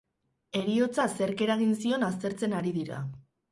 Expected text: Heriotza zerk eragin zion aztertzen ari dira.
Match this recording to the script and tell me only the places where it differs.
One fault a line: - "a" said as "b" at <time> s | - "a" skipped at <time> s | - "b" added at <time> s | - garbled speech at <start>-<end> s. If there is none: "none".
none